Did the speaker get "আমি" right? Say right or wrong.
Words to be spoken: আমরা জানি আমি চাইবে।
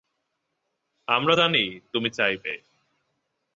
wrong